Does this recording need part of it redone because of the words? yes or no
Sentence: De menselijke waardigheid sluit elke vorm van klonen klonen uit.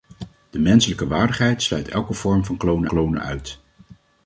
no